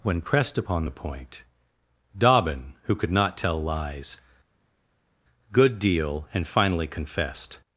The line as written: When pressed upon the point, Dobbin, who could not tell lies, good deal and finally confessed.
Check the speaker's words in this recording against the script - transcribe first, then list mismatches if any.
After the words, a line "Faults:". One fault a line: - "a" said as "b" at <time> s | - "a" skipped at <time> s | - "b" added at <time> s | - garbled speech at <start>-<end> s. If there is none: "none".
When pressed upon the point, Dobbin, who could not tell lies, good deal and finally confessed.
Faults:
none